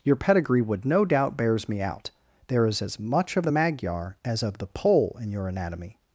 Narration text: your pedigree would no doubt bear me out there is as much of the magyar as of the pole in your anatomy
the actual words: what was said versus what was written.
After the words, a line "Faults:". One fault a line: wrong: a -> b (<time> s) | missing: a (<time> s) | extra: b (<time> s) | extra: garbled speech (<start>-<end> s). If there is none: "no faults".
your pedigree would no doubt bears me out there is as much of the magyar as of the pole in your anatomy
Faults:
wrong: bear -> bears (1.4 s)